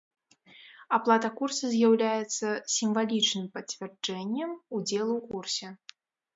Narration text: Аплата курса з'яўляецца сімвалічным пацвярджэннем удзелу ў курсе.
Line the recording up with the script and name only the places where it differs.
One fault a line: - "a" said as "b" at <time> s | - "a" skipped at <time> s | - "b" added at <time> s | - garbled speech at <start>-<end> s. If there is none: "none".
none